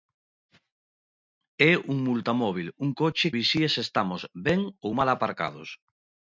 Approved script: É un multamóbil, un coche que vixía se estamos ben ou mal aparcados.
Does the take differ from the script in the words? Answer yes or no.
yes